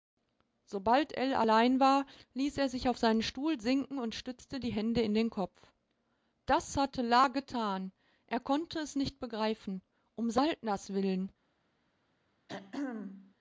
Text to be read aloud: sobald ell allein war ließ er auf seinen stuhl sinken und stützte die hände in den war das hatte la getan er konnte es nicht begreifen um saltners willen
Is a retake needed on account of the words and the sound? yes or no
yes